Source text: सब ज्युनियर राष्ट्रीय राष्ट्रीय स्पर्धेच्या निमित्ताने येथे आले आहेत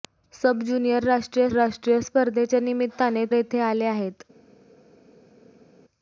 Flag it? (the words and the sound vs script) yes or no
no